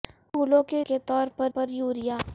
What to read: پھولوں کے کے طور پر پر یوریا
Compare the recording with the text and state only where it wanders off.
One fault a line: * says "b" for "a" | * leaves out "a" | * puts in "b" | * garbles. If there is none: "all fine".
all fine